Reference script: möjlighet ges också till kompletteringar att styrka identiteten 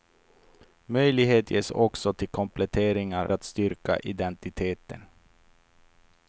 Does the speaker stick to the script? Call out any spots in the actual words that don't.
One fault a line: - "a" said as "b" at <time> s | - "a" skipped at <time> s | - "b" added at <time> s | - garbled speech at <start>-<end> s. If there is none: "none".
none